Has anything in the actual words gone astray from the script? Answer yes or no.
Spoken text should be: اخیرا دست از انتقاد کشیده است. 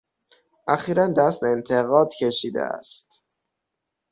yes